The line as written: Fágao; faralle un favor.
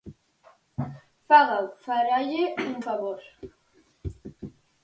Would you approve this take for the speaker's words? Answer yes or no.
yes